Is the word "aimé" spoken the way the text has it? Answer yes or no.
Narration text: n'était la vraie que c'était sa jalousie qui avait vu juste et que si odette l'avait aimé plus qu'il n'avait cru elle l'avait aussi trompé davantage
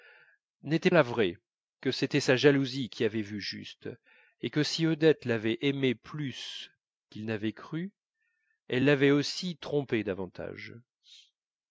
yes